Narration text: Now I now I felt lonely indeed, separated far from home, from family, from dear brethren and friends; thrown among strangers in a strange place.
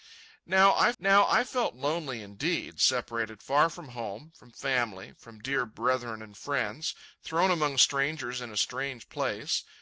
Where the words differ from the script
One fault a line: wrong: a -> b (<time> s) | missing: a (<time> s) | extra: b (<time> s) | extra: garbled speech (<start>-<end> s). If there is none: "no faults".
no faults